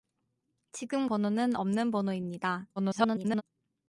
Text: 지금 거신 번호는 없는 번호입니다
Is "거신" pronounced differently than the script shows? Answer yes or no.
yes